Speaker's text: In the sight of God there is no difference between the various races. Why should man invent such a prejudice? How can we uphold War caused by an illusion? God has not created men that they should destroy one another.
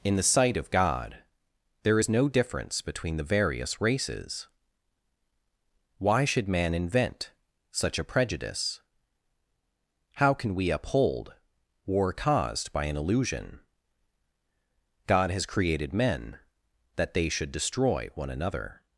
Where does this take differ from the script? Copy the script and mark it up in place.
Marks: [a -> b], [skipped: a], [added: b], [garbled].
In the sight of God there is no difference between the various races. Why should man invent such a prejudice? How can we uphold War caused by an illusion? God has [skipped: not] created men that they should destroy one another.